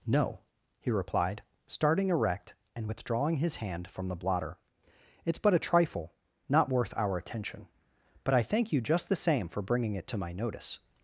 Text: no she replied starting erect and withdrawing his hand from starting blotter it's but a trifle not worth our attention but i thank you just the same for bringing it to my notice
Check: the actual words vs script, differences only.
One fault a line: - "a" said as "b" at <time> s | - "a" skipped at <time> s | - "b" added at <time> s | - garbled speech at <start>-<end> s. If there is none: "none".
- "she" said as "he" at 0.8 s
- "starting" said as "the" at 4.1 s